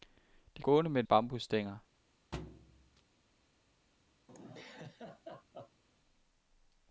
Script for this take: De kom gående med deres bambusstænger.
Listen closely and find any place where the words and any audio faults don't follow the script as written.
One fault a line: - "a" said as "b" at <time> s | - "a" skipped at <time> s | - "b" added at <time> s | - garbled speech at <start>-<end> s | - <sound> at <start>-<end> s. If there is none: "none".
- "kom" skipped at 0.6 s
- "deres" skipped at 1.0 s
- thud at 2.3-3.0 s
- laugh at 4.3-5.8 s